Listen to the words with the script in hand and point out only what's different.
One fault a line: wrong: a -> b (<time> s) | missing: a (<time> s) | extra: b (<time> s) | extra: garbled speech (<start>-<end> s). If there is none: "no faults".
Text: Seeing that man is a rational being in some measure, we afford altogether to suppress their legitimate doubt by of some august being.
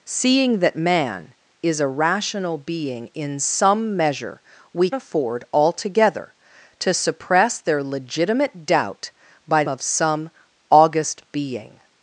no faults